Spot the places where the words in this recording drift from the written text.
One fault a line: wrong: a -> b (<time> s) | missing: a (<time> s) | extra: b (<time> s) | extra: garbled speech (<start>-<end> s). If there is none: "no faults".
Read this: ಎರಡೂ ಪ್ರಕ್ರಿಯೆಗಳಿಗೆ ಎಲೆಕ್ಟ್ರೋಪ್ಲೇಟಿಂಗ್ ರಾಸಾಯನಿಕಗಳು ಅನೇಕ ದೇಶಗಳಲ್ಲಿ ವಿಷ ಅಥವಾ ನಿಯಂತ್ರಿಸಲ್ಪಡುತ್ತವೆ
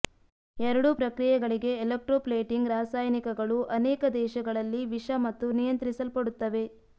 wrong: ಅಥವಾ -> ಮತ್ತು (5.3 s)